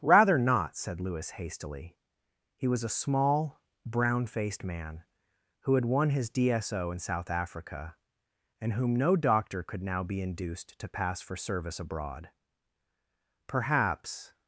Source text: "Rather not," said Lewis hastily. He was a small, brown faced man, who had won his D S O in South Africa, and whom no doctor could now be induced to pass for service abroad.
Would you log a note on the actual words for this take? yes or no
yes